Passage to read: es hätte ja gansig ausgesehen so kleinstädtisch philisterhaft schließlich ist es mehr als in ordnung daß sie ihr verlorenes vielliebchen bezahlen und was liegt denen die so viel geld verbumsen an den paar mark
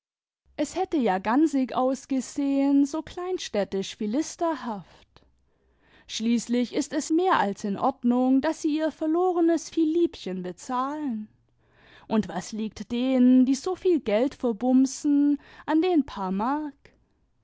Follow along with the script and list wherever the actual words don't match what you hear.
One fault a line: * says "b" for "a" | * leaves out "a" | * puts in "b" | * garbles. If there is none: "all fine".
all fine